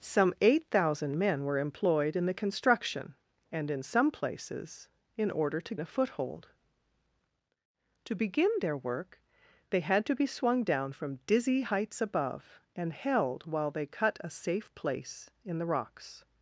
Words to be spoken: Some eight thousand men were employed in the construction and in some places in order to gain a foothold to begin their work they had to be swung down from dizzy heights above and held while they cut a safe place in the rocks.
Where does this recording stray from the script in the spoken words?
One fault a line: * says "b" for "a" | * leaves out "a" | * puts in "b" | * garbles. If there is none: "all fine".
* leaves out "gain"